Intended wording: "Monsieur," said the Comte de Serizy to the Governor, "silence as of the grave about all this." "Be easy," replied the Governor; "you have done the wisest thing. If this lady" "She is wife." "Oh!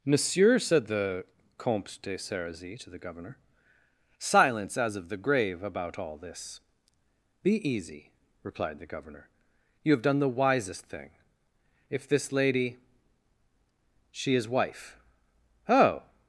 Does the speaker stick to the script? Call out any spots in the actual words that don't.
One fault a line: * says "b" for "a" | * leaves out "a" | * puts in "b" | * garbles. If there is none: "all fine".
all fine